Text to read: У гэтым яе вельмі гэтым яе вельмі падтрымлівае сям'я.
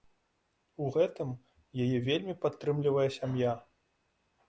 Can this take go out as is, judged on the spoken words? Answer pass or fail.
fail